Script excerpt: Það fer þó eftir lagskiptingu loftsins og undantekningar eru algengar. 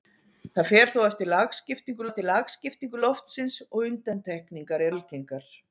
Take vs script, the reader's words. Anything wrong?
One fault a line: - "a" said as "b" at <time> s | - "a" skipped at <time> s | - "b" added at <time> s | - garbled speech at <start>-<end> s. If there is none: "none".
- "eftir lagskiptingu" added at 2.0 s
- "eru" skipped at 4.9 s